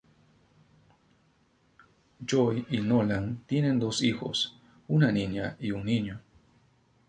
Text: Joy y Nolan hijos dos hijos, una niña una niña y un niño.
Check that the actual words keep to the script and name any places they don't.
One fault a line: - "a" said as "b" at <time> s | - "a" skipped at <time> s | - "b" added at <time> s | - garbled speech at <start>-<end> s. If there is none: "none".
- "hijos" said as "tienen" at 3.5 s
- "una niña" skipped at 5.6 s